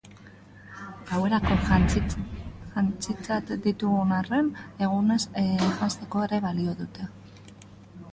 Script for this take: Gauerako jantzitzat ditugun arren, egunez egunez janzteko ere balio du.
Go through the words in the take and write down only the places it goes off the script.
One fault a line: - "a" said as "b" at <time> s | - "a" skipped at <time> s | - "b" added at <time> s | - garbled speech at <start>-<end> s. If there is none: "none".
- "egunez" skipped at 5.2 s
- "du" said as "dute" at 6.8 s